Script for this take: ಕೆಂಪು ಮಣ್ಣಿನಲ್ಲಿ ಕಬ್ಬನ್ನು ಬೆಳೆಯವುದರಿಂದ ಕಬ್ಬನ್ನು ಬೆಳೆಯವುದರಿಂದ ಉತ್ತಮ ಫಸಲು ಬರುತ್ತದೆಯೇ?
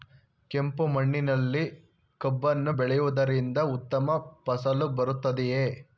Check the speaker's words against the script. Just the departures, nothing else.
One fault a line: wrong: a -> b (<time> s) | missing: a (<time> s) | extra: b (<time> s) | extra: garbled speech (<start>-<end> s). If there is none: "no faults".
missing: ಕಬ್ಬನ್ನು ಬೆಳೆಯವುದರಿಂದ (3.6 s)